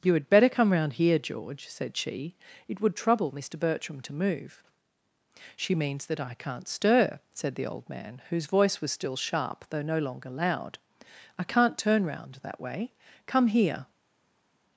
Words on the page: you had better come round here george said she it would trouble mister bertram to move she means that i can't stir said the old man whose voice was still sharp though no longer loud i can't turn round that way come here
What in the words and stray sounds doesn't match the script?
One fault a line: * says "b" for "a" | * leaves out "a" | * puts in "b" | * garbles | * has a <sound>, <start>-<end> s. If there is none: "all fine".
all fine